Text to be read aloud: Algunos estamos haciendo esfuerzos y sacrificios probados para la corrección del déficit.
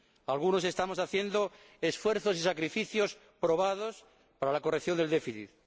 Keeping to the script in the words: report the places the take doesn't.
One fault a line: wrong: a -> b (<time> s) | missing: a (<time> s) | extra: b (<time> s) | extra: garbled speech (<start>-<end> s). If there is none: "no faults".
no faults